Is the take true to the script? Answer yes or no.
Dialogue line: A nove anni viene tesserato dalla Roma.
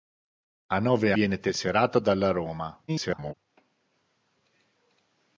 no